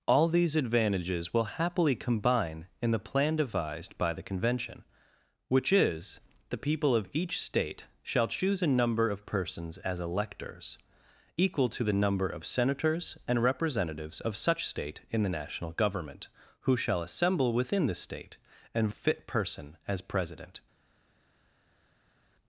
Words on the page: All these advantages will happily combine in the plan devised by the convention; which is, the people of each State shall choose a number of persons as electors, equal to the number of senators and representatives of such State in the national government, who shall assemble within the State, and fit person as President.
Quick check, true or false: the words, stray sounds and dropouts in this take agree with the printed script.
true